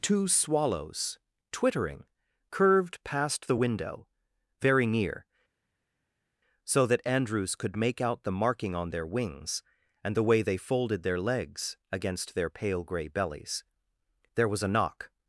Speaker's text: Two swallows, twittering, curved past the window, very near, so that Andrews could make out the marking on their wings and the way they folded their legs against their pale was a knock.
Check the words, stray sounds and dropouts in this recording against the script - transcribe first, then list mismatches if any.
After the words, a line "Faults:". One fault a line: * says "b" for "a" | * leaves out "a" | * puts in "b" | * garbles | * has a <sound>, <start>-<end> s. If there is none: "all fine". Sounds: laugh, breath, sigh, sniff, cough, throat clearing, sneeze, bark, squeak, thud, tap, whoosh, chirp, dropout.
Two swallows, twittering, curved past the window, very near, so that Andrews could make out the marking on their wings and the way they folded their legs against their pale grey bellies. There was a knock.
Faults:
* puts in "grey bellies There"